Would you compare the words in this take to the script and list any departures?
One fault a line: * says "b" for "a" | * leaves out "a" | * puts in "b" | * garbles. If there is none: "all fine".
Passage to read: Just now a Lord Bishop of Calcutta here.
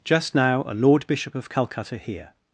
all fine